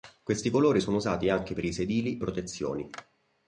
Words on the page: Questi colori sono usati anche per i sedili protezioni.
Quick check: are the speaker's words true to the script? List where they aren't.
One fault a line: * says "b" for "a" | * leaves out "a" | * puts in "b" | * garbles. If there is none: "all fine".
all fine